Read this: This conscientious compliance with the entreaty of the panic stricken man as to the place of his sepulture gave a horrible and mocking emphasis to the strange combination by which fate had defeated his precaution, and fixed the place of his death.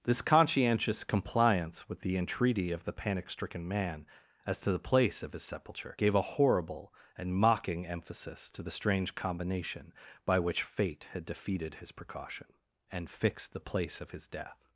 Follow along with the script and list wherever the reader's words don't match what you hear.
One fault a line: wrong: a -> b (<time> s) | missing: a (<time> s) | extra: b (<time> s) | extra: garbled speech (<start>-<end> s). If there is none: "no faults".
no faults